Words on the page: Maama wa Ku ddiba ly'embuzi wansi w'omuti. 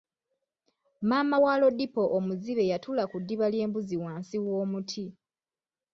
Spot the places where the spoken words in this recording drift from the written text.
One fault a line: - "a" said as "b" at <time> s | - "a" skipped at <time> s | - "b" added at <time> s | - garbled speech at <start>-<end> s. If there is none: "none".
- "Lodipo omuzibe yatuula" added at 1.6 s